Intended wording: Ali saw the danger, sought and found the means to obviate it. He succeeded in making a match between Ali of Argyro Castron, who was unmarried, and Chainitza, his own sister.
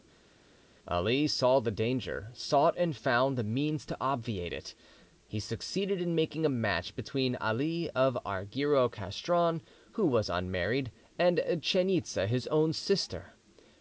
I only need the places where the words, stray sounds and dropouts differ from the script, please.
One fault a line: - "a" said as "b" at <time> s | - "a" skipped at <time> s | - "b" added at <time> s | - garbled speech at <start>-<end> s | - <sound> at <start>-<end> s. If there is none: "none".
none